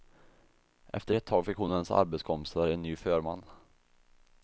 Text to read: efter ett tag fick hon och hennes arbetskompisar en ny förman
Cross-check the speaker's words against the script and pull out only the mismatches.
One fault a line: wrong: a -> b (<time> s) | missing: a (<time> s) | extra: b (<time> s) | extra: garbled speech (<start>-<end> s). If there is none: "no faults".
no faults